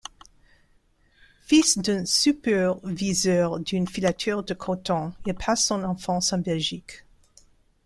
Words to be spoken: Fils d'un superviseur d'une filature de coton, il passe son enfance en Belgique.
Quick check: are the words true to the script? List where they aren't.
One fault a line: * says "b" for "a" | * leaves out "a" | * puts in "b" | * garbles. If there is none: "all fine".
all fine